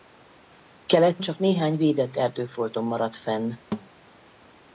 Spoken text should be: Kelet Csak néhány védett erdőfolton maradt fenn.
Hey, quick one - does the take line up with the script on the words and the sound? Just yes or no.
no